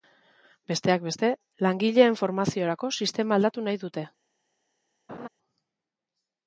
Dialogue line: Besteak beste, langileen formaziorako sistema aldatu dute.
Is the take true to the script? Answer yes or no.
no